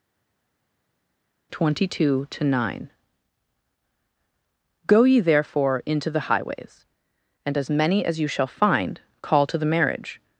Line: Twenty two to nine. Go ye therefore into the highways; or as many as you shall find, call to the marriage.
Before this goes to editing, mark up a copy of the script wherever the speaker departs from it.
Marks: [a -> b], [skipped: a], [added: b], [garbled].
Twenty two to nine. Go ye therefore into the highways; [or -> and] as many as you shall find, call to the marriage.